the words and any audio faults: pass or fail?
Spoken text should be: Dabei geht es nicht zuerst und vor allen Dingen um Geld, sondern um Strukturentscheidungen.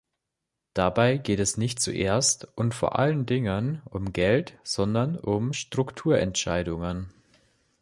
pass